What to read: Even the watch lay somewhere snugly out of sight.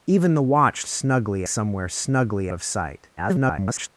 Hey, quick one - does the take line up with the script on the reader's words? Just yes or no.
no